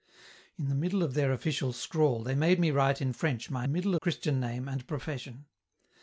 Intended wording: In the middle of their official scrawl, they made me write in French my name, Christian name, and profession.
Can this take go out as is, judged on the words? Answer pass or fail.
fail